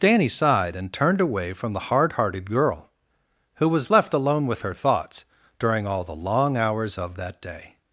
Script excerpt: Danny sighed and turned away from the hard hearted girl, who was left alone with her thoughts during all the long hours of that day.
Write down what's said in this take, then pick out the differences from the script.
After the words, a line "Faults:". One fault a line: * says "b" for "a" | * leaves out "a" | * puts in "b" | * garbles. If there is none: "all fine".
Danny sighed and turned away from the hard hearted girl, who was left alone with her thoughts during all the long hours of that day.
Faults:
all fine